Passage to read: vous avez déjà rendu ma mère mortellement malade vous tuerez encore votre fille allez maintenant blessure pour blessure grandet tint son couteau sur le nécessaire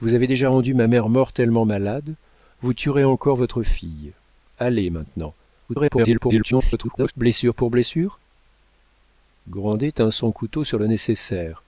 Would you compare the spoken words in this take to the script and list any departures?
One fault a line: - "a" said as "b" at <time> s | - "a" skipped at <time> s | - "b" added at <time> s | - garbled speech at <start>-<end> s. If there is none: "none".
- garbled speech at 5.7-7.1 s